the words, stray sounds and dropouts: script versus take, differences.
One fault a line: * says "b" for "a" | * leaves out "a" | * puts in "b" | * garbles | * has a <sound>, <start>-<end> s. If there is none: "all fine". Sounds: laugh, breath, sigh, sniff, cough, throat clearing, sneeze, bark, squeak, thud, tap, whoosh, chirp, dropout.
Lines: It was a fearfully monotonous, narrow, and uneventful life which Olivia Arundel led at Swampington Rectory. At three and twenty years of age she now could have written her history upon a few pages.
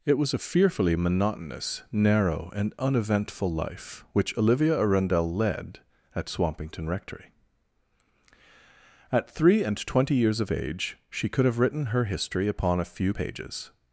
* leaves out "now"